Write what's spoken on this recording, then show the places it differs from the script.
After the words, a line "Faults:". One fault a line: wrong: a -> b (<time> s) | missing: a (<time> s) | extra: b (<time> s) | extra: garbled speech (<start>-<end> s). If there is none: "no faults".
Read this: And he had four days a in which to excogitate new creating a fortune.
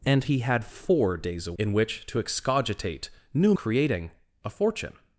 And he had four days a in which to excogitate new creating a fortune.
Faults:
no faults